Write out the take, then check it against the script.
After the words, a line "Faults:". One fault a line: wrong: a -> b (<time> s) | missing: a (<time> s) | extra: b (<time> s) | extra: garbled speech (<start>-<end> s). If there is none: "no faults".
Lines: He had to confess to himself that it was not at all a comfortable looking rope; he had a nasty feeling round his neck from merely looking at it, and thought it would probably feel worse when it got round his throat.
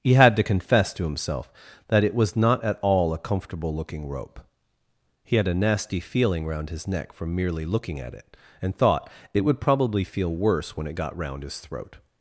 He had to confess to himself that it was not at all a comfortable looking rope; he had a nasty feeling round his neck from merely looking at it, and thought it would probably feel worse when it got round his throat.
Faults:
no faults